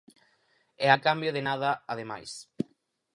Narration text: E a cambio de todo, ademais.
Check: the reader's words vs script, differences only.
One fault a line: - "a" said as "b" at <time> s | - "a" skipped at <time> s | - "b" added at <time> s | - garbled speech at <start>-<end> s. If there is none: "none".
- "todo" said as "nada" at 1.5 s